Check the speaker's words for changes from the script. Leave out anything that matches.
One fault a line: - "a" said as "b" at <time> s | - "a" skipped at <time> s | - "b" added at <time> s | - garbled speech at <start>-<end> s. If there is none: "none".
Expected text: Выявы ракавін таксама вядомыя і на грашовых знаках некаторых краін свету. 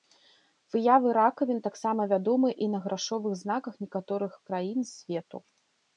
none